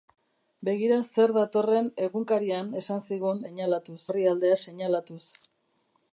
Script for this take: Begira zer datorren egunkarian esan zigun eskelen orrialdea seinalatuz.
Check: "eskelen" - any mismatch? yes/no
yes